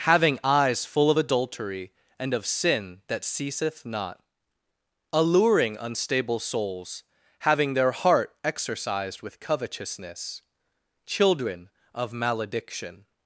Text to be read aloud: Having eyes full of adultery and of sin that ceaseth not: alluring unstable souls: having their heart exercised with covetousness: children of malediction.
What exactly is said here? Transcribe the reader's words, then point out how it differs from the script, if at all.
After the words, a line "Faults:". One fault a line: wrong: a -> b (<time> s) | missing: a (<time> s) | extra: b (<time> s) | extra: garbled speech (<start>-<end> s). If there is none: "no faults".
Having eyes full of adultery and of sin that ceaseth not: alluring unstable souls: having their heart exercised with covetousness: children of malediction.
Faults:
no faults